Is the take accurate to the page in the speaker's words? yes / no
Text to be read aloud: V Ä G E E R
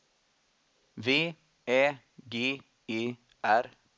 no